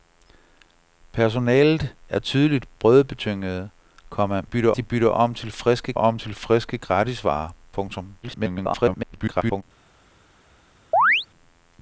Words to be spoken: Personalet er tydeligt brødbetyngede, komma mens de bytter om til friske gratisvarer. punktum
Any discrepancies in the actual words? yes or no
yes